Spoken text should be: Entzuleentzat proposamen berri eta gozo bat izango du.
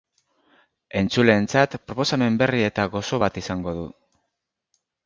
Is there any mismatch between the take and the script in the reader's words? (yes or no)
no